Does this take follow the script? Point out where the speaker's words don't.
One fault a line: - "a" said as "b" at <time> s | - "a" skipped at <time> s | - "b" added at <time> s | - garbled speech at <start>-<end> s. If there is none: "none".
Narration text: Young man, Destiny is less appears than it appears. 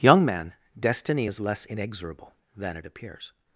- "appears" said as "inexorable" at 1.6 s